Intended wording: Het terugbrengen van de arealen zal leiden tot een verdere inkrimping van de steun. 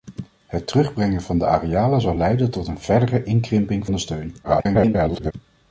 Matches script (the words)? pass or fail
fail